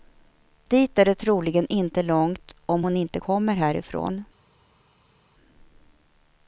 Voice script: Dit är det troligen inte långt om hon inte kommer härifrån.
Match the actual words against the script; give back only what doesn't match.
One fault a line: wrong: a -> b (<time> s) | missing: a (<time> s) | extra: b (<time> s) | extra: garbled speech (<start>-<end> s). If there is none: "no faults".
no faults